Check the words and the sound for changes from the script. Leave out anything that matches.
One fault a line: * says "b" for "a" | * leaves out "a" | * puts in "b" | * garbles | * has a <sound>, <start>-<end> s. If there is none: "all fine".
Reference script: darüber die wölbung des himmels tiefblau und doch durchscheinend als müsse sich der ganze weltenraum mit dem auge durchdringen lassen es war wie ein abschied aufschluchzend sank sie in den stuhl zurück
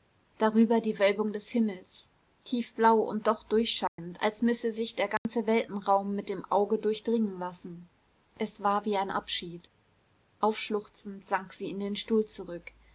* has a dropout, 3.9-4.0 s
* has a dropout, 5.2-5.3 s